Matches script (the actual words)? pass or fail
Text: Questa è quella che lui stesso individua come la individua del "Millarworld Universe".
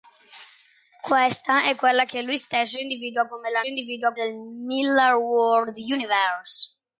pass